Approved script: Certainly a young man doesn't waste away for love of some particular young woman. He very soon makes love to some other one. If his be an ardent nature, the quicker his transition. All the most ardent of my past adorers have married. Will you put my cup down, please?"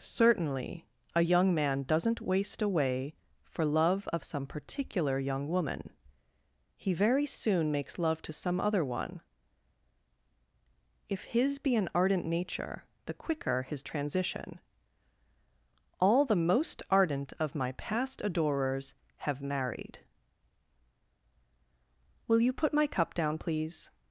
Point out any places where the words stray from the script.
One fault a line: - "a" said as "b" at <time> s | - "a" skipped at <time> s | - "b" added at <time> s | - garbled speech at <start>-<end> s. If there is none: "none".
none